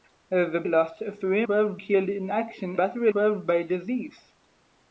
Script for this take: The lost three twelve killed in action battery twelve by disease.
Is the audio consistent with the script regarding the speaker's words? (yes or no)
yes